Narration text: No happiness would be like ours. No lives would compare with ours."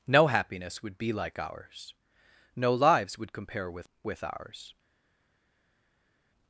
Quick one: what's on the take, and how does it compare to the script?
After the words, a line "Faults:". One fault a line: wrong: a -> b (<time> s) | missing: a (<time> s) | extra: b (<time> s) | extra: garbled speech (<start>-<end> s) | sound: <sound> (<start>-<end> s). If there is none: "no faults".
No happiness would be like ours. No lives would compare with with ours."
Faults:
extra: with (4.0 s)